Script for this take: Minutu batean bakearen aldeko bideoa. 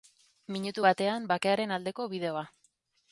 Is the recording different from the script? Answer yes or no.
no